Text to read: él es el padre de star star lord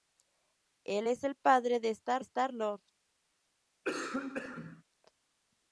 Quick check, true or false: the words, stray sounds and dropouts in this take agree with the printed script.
false